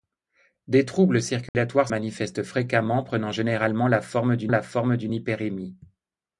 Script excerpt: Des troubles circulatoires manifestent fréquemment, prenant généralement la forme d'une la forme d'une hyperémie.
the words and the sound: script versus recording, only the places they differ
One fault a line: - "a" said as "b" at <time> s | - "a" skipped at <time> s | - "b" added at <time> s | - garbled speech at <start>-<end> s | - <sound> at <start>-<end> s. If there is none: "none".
- dropout at 1.5-1.5 s